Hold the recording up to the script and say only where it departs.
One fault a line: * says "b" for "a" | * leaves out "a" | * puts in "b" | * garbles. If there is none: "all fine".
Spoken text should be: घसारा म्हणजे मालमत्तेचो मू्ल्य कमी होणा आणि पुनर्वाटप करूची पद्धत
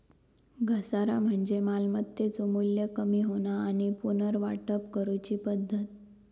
all fine